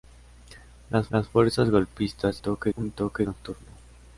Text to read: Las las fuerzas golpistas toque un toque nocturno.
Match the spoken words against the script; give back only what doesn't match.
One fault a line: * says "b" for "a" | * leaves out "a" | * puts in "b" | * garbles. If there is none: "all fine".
all fine